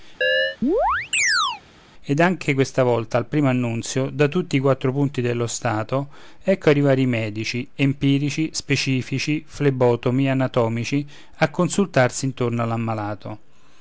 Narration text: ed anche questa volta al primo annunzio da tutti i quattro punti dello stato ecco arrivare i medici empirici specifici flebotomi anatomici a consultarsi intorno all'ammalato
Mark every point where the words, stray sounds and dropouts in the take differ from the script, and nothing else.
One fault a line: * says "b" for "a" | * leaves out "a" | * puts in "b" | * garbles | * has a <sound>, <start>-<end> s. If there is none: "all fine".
* has a chirp, 0.2-1.6 s